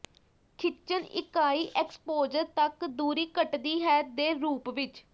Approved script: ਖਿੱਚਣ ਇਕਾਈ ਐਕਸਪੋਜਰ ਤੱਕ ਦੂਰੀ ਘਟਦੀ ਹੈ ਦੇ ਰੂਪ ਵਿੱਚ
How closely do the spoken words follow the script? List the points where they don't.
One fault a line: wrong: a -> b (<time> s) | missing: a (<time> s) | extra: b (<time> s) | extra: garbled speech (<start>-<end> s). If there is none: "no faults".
no faults